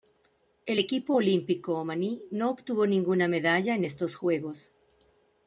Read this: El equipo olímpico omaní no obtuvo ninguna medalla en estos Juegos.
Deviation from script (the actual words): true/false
false